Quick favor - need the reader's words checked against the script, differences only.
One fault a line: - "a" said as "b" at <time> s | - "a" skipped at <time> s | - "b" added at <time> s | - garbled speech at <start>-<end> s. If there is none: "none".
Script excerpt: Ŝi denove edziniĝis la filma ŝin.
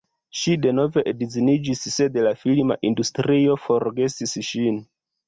- "sed" added at 1.9 s
- "industrio forgesis" added at 2.9 s